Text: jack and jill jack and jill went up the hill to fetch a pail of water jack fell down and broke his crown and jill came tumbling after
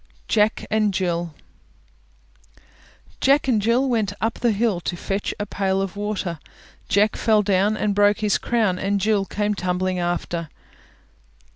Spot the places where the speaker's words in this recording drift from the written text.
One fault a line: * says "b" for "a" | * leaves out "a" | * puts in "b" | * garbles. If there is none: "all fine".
all fine